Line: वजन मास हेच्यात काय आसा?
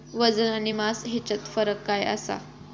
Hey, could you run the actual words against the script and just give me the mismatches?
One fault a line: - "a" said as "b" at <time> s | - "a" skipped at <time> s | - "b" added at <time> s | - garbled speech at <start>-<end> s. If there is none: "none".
- "आणि" added at 0.5 s
- "फरक" added at 1.5 s